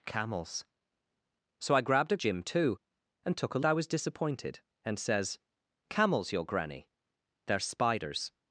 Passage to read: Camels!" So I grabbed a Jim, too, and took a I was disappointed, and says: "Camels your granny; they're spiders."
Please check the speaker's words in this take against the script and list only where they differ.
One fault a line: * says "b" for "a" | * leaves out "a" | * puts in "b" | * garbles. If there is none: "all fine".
all fine